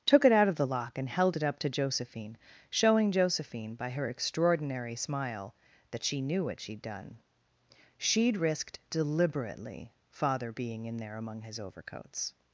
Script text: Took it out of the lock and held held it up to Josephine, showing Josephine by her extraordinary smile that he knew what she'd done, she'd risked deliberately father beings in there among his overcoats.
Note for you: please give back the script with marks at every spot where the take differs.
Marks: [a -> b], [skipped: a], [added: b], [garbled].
Took it out of the lock and held [skipped: held] it up to Josephine, showing Josephine by her extraordinary smile that [he -> she] knew what she'd done, she'd risked deliberately father [beings -> being] in there among his overcoats.